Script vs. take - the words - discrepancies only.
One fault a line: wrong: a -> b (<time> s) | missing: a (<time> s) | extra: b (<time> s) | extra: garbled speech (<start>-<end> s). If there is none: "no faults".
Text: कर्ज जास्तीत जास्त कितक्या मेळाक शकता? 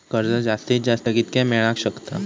no faults